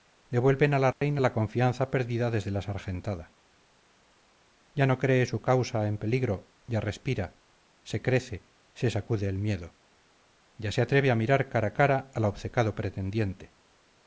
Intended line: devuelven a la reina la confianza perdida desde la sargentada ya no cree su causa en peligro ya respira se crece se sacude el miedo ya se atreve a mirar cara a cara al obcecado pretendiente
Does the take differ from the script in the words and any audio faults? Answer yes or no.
yes